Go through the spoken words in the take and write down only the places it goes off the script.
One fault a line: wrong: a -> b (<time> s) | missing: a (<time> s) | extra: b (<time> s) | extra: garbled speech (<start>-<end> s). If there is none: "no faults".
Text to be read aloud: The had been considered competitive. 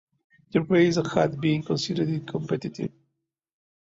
extra: race (0.6 s)